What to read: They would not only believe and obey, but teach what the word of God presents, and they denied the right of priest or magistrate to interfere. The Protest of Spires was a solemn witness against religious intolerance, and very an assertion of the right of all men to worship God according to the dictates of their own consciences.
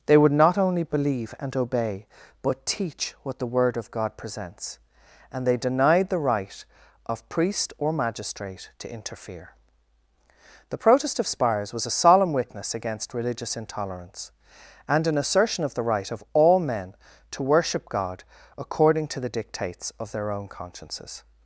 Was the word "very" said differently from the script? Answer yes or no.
yes